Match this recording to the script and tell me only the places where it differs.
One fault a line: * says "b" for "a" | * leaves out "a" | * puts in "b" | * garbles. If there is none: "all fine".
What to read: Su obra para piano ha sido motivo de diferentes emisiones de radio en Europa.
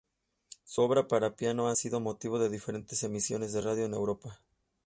all fine